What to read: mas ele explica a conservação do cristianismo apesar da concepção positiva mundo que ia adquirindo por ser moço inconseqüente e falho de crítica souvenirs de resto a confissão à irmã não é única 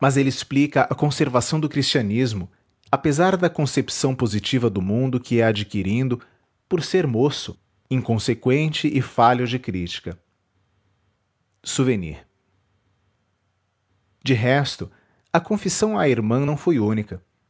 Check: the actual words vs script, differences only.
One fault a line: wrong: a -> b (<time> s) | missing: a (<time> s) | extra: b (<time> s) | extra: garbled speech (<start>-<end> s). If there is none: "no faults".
extra: do (4.7 s)
wrong: é -> foi (16.6 s)